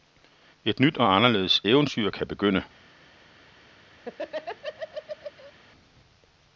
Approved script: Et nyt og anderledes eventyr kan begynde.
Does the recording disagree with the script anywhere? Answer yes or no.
no